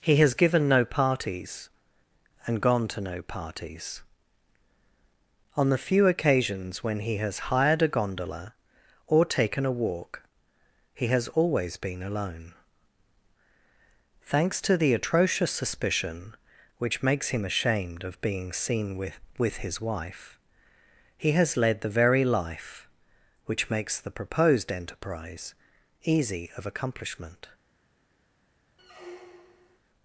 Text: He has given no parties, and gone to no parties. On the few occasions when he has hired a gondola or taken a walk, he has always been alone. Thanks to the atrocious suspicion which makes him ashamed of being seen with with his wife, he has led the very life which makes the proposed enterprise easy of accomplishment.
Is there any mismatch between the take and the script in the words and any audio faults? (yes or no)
yes